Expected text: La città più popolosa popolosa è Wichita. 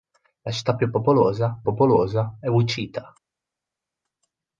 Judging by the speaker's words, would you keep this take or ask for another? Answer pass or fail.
pass